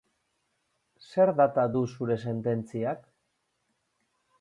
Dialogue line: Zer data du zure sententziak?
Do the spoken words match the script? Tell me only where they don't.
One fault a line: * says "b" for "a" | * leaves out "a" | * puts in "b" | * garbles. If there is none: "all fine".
all fine